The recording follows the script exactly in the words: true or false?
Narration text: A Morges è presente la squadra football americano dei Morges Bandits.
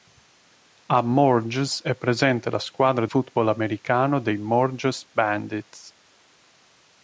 true